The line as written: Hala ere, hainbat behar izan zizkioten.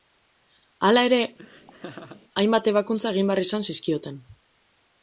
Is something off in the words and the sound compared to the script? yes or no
yes